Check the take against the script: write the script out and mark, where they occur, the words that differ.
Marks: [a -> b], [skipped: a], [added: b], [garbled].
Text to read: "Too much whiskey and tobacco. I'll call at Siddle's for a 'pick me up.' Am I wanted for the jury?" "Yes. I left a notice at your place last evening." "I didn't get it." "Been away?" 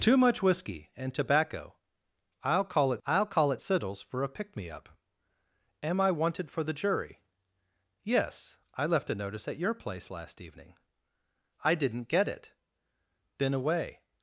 "Too much whiskey and tobacco. I'll call at [added: I'll call at] Siddle's for a 'pick me up.' Am I wanted for the jury?" "Yes. I left a notice at your place last evening." "I didn't get it." "Been away?"